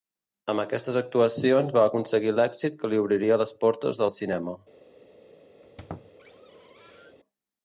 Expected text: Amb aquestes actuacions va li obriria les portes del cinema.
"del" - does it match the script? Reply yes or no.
yes